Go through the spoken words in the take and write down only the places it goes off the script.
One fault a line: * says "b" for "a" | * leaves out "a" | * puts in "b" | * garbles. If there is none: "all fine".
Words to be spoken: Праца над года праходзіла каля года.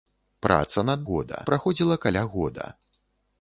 all fine